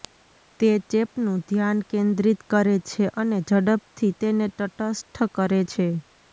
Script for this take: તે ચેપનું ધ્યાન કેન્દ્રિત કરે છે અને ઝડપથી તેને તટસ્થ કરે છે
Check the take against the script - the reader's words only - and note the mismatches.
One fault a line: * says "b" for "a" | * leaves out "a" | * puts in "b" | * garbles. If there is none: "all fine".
all fine